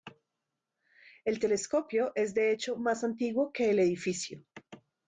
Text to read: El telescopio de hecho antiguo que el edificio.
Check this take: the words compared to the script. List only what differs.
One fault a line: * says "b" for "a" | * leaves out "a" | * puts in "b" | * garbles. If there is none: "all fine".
* puts in "es"
* puts in "más"